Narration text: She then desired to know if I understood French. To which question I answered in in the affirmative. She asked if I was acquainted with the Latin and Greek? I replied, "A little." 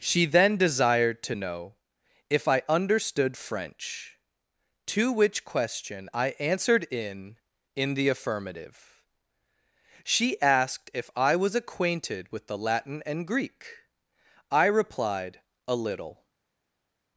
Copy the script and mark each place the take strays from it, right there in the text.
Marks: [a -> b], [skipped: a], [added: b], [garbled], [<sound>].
She then desired to know if I understood French. To which question I answered in in the affirmative. She asked if I was acquainted with the Latin and Greek? I replied, "A little."